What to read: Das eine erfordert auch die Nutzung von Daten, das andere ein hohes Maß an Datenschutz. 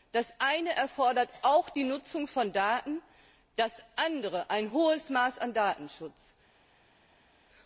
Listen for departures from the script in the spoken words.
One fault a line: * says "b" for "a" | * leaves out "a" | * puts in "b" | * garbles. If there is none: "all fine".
all fine